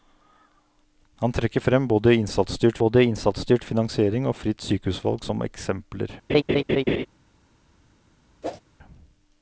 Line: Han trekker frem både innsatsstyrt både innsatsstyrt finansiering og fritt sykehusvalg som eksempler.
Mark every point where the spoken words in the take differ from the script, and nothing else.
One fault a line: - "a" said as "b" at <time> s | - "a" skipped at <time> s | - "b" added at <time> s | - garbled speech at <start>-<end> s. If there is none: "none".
none